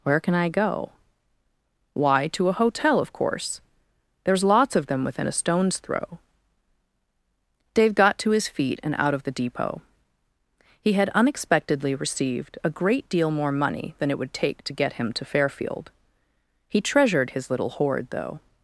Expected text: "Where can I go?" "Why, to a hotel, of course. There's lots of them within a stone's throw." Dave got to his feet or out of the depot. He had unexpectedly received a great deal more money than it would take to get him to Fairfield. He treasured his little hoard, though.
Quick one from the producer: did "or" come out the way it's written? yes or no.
no